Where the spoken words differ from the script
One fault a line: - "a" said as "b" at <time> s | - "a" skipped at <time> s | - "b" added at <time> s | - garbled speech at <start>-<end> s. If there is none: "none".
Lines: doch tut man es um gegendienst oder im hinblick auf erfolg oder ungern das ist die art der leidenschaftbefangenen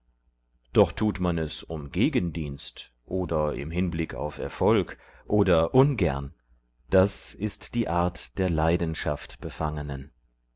none